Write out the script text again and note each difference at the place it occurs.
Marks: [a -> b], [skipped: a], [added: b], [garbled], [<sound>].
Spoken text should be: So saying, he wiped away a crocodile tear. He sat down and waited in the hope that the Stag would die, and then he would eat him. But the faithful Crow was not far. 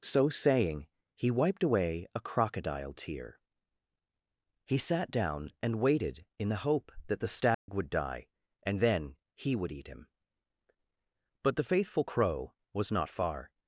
So saying, he wiped away a crocodile tear. He sat down and waited in the hope that the Stag [dropout] would die, and then he would eat him. But the faithful Crow was not far.